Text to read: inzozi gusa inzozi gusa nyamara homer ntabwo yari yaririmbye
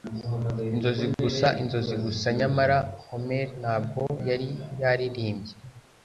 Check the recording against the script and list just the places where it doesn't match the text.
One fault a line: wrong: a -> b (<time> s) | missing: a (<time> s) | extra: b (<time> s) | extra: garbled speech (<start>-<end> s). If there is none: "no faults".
no faults